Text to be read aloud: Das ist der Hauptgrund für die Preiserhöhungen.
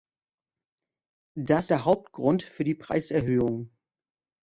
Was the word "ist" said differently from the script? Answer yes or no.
yes